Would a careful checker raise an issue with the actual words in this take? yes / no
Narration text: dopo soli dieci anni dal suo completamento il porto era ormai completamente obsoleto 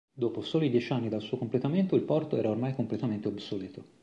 no